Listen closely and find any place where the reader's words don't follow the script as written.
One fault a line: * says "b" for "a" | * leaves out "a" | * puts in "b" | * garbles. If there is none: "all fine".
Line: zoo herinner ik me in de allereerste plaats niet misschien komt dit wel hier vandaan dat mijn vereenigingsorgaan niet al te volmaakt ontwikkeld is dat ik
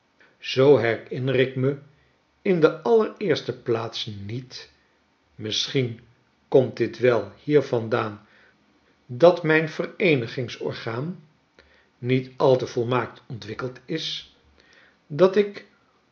all fine